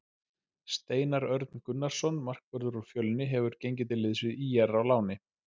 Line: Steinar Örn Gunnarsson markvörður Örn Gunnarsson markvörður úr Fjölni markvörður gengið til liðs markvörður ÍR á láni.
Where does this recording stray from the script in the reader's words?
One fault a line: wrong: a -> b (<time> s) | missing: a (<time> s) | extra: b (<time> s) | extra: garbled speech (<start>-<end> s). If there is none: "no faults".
missing: Örn Gunnarsson markvörður (2.8 s)
wrong: markvörður -> hefur (3.4 s)
wrong: markvörður -> við (4.3 s)